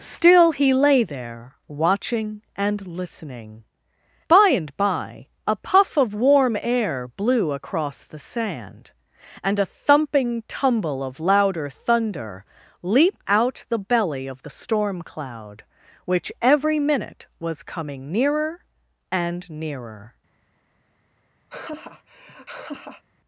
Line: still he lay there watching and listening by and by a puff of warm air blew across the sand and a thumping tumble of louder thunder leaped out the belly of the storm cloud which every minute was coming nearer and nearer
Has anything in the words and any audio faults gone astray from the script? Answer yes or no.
yes